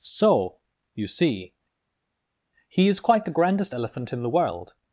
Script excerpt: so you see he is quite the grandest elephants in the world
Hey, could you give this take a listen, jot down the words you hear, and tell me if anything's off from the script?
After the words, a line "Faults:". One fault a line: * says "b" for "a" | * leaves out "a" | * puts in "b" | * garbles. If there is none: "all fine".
so you see he is quite the grandest elephant in the world
Faults:
* says "elephant" for "elephants"